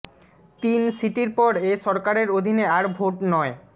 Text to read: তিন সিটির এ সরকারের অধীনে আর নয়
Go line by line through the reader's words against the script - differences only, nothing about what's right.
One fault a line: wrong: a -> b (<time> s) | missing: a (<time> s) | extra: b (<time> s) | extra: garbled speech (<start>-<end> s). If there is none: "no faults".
extra: পর (1.4 s)
extra: ভোট (3.0 s)